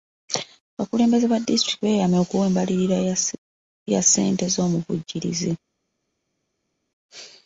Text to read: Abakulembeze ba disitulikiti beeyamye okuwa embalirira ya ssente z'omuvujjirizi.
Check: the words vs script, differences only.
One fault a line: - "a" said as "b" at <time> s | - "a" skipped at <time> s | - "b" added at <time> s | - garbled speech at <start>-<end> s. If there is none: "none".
none